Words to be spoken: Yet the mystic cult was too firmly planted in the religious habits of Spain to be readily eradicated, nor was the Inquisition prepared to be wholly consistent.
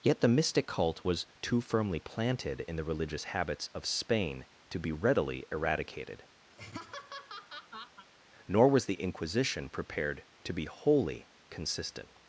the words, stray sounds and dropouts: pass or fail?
fail